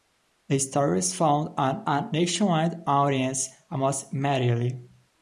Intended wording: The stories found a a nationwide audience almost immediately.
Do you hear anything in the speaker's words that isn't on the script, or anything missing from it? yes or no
no